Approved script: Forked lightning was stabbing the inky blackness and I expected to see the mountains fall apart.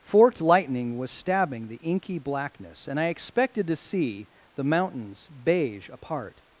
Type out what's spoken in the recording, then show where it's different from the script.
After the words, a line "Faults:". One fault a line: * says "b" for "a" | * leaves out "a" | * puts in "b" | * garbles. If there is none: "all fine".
Forked lightning was stabbing the inky blackness and I expected to see the mountains beige apart.
Faults:
* says "beige" for "fall"